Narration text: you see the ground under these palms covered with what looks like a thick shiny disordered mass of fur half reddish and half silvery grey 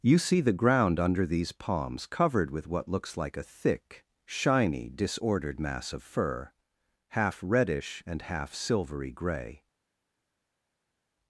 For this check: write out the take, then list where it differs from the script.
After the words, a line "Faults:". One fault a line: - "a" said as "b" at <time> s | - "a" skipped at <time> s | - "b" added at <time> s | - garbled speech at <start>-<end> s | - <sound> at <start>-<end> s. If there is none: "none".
you see the ground under these palms covered with what looks like a thick shiny disordered mass of fur half reddish and half silvery grey
Faults:
none